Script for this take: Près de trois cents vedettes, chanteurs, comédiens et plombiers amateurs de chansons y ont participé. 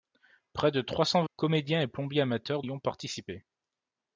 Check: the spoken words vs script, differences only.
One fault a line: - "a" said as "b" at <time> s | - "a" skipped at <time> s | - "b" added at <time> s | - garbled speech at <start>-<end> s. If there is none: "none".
- "vedettes chanteurs" skipped at 1.2 s
- "de chansons" skipped at 2.6 s